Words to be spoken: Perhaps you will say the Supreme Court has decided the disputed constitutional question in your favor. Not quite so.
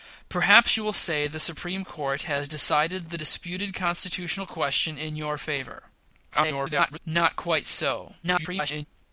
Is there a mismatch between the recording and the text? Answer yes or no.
yes